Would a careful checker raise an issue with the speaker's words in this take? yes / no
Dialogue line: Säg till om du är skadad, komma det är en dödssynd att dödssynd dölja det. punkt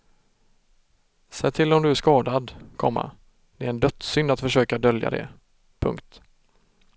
yes